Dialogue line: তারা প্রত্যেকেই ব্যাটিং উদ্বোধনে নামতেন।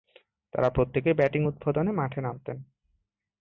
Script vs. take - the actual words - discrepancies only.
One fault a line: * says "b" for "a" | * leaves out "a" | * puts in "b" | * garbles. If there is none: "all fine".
* puts in "মাঠে"